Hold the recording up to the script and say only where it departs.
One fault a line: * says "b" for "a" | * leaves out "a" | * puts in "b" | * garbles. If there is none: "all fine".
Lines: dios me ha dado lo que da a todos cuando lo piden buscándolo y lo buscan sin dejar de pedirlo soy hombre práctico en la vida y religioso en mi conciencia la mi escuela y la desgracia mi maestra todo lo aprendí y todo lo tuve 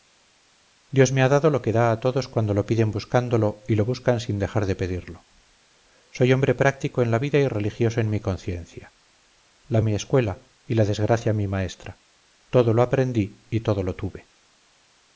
all fine